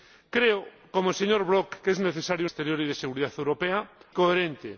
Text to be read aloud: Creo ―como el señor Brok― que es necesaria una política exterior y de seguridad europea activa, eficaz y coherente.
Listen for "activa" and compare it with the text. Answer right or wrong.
wrong